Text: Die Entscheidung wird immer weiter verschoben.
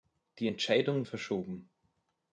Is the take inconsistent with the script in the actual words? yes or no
yes